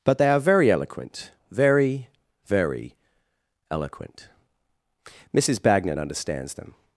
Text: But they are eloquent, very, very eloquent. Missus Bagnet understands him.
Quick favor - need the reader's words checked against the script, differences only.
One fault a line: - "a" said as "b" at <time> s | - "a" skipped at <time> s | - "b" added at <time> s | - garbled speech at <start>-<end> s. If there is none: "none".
- "very" added at 0.4 s
- "him" said as "them" at 6.5 s